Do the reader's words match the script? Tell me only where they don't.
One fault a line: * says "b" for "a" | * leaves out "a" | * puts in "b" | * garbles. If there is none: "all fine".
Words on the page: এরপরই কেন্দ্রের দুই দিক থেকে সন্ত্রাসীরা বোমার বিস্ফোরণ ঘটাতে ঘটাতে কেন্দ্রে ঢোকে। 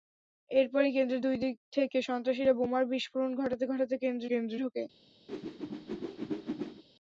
* puts in "কেন্দ্রে"